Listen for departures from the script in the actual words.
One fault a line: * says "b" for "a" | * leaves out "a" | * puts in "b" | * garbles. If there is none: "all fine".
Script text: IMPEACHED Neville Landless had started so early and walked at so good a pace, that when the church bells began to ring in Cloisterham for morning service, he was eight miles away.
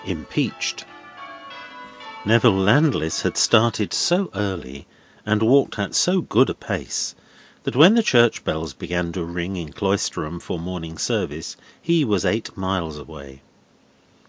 all fine